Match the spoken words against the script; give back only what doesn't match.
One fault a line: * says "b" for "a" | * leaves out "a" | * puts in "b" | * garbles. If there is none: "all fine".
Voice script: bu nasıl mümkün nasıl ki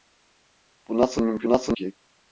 all fine